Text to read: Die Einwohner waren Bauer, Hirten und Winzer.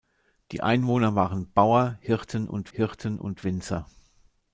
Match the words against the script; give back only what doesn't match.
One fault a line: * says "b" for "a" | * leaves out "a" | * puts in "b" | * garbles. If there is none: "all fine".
* puts in "Hirten und"